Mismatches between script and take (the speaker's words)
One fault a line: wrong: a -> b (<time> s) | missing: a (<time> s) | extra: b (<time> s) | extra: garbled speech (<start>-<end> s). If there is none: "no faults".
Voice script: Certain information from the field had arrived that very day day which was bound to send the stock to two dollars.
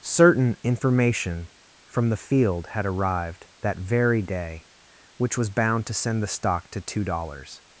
missing: day (4.7 s)